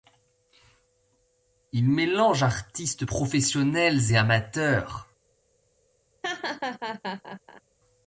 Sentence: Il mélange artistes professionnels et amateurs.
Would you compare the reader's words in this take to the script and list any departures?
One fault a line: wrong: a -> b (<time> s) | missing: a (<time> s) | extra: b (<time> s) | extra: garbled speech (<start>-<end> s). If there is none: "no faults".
no faults